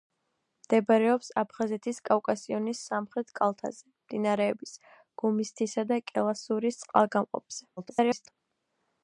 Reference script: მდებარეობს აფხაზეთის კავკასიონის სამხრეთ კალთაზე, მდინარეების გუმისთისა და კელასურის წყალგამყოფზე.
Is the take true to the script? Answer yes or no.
no